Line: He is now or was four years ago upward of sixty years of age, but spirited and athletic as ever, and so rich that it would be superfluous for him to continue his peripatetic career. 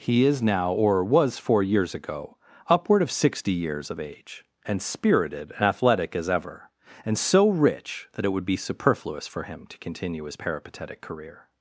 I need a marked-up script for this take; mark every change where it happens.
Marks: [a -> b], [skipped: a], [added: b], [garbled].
He is now or was four years ago upward of sixty years of age, [but -> and] spirited and athletic as ever, and so rich that it would be superfluous for him to continue his peripatetic career.